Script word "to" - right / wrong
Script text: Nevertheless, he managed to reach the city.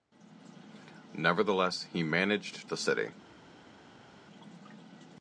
wrong